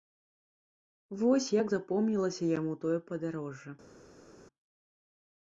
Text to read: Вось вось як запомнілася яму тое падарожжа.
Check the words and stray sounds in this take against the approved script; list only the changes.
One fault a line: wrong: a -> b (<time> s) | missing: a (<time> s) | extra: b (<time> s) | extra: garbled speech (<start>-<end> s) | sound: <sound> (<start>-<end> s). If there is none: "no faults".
missing: вось (1.5 s)